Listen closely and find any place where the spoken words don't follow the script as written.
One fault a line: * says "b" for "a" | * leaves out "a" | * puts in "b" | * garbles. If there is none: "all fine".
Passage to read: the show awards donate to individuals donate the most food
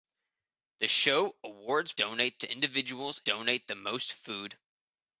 all fine